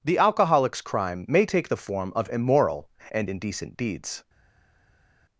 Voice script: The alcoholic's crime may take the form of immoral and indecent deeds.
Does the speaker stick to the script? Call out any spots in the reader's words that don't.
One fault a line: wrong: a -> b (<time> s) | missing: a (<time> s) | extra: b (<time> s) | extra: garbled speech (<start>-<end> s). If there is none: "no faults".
no faults